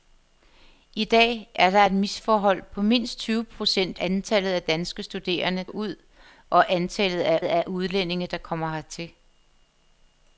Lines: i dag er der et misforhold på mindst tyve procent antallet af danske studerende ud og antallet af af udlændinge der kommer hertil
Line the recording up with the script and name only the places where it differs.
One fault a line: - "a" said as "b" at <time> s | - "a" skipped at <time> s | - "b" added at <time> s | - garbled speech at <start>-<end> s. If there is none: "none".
none